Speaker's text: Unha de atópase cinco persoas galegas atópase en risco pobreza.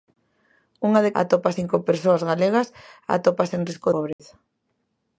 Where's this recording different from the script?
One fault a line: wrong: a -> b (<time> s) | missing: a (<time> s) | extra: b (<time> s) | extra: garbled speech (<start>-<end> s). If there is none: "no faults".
no faults